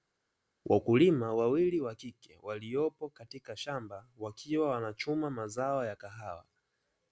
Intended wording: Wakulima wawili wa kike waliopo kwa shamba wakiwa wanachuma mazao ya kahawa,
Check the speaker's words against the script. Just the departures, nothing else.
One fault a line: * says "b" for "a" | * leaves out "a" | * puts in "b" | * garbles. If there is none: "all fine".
* says "katika" for "kwa"